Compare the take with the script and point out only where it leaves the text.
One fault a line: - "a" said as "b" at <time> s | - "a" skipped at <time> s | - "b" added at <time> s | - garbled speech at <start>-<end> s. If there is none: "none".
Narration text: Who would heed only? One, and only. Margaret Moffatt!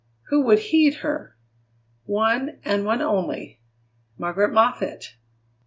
- "only" said as "her" at 1.0 s
- "one" added at 2.8 s